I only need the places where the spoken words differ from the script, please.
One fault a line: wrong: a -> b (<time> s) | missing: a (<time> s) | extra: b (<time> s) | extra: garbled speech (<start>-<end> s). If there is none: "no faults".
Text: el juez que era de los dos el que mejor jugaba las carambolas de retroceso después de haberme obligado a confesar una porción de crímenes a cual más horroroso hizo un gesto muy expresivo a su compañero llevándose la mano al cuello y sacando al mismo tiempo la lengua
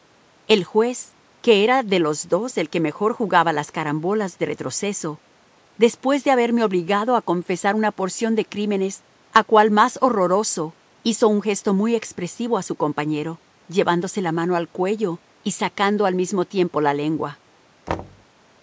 no faults